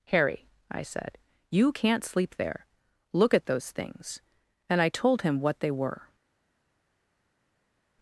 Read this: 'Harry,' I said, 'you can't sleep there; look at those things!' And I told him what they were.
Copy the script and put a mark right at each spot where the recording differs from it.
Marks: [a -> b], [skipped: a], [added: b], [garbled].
'Harry,' I said, 'you can't sleep there; look at those things!' And I told him what they were.